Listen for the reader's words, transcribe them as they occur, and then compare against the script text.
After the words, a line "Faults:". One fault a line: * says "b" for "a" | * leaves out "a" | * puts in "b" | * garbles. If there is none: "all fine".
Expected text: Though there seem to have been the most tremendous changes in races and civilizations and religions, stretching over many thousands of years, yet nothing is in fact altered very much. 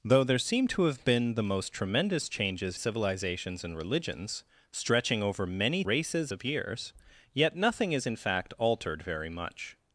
Though there seem to have been the most tremendous changes civilizations and religions, stretching over many races of years, yet nothing is in fact altered very much.
Faults:
* leaves out "in races and"
* says "races" for "thousands"